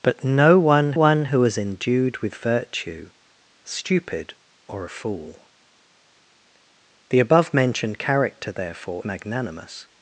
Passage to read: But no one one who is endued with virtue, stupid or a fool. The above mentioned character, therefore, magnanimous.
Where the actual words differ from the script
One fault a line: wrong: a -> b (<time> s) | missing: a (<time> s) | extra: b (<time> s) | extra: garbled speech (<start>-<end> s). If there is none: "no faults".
no faults